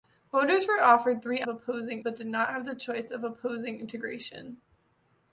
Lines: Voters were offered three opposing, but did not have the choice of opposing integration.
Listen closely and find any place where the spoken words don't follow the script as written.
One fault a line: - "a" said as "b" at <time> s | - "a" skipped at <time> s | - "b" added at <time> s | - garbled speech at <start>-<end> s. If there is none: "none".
none